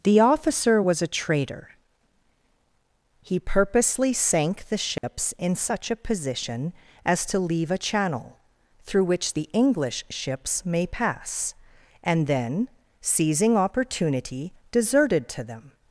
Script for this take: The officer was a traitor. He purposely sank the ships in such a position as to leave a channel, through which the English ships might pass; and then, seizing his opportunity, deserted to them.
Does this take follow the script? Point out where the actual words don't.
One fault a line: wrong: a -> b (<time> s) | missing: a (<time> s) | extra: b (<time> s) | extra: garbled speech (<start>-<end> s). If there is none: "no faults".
wrong: might -> may (10.6 s)
missing: his (13.6 s)